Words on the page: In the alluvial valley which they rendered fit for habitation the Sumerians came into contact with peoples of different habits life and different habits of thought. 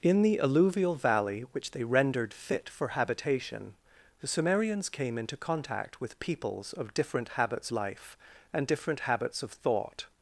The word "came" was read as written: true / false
true